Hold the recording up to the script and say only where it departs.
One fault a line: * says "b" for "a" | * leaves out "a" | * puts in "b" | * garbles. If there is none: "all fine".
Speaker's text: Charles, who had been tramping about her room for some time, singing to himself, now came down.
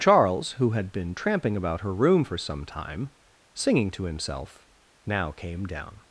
all fine